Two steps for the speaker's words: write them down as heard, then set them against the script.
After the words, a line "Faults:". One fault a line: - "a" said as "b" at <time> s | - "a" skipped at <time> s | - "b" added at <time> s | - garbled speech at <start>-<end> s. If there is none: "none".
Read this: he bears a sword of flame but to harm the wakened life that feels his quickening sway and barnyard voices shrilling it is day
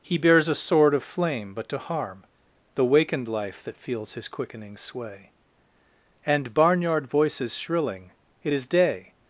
he bears a sword of flame but to harm the wakened life that feels his quickening sway and barnyard voices shrilling it is day
Faults:
none